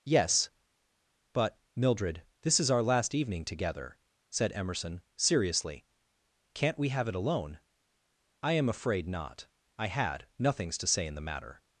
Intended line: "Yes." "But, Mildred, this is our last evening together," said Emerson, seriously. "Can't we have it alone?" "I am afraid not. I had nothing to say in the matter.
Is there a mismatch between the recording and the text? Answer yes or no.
yes